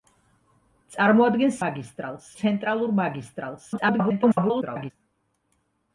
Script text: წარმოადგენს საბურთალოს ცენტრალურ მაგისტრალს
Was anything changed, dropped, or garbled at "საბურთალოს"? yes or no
yes